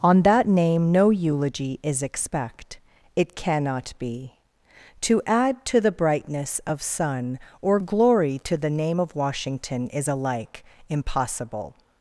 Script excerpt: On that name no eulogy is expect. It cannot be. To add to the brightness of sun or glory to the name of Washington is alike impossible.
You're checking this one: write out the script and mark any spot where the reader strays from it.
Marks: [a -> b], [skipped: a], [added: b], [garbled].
On that name no eulogy is expect. It cannot be. To add to the brightness of sun or glory to the name of Washington is alike impossible.